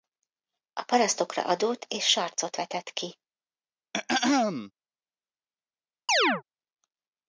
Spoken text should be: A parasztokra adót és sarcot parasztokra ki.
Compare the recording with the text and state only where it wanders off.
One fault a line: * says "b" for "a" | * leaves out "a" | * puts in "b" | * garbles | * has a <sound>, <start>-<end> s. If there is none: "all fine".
* says "vetett" for "parasztokra"
* has a throat clearing, 3.9-4.7 s
* has a chirp, 6.1-6.4 s